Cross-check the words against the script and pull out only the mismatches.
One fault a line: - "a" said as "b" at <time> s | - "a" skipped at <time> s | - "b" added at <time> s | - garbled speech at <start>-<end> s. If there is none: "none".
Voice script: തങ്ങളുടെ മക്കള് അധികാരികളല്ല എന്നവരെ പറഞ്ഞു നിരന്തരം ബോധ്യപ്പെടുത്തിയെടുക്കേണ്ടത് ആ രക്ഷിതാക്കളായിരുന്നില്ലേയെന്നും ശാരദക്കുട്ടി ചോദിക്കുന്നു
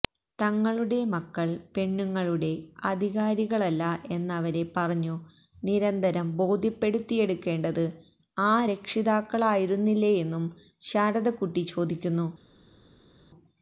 - "പെണ്ണുങ്ങളുടെ" added at 1.8 s